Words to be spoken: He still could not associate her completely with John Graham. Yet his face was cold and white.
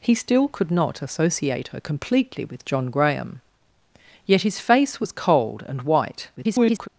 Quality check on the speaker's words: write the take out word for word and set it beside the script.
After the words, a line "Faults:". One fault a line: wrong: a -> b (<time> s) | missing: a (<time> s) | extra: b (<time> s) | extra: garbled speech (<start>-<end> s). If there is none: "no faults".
He still could not associate her completely with John Graham. Yet his face was cold and white. [garbled]
Faults:
extra: garbled speech (6.4-6.9 s)